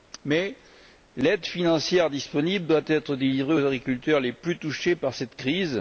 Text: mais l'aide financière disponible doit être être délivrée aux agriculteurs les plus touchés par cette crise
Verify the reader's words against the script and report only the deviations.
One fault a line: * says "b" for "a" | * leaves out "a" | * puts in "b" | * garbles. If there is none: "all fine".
* leaves out "être"